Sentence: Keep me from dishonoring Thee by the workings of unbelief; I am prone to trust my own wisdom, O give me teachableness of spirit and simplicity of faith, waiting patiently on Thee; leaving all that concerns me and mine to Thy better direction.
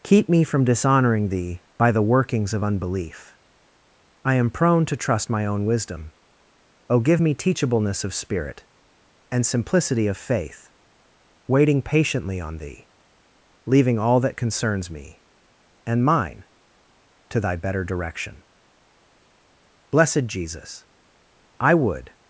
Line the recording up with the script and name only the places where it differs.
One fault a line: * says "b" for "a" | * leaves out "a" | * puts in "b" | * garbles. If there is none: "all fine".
* puts in "Blessed Jesus I would"